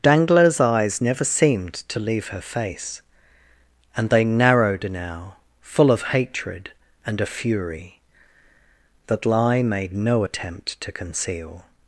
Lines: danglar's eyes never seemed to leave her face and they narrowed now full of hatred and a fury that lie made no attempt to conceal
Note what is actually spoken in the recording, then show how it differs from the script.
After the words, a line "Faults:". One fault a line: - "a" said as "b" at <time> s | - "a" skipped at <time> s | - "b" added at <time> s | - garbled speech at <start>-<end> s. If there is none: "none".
danglar's eyes never seemed to leave her face and they narrowed now full of hatred and a fury that lie made no attempt to conceal
Faults:
none